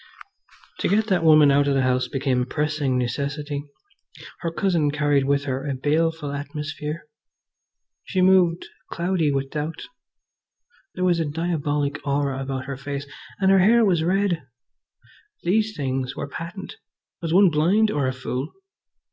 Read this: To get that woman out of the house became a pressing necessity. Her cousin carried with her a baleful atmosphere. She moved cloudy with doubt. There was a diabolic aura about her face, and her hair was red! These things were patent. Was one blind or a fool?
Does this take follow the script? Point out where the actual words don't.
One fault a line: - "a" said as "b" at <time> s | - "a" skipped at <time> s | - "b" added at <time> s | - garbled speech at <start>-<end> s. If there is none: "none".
none